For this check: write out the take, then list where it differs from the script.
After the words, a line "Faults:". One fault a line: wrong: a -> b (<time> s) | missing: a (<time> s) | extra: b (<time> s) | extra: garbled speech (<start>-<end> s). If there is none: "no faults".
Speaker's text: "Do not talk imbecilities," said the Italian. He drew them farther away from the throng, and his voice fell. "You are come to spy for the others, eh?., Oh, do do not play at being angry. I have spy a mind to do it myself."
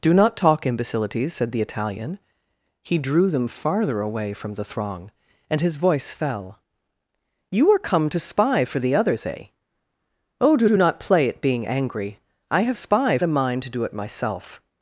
"Do not talk imbecilities," said the Italian. He drew them farther away from the throng, and his voice fell. "You are come to spy for the others, eh?., Oh, do do not play at being angry. I have spy a mind to do it myself."
Faults:
no faults